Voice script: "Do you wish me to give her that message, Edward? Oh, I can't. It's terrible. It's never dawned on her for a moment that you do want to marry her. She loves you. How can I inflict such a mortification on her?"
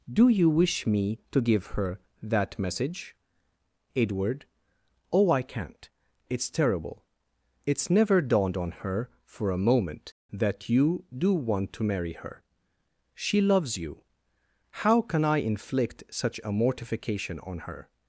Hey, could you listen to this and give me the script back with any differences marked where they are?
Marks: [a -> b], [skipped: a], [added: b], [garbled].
"Do you wish me to give her that message, Edward? Oh, I can't. It's terrible. It's never dawned on her for a moment that you do want to marry her. She loves you. How can I inflict such a mortification on her?"